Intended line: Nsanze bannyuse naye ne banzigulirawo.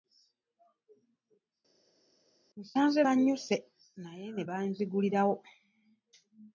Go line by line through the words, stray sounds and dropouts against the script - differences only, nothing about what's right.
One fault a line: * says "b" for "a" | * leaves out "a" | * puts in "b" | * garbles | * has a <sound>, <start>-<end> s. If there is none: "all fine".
all fine